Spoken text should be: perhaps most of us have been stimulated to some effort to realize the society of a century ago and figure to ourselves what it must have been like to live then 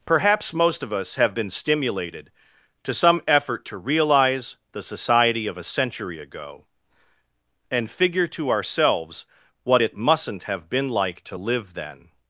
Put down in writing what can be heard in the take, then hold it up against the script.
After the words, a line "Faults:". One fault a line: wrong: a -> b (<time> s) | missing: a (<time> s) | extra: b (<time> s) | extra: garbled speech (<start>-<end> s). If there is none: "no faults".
perhaps most of us have been stimulated to some effort to realize the society of a century ago and figure to ourselves what it mustn't have been like to live then
Faults:
wrong: must -> mustn't (10.0 s)